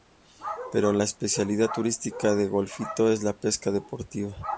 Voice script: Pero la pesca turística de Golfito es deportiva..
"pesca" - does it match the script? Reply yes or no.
no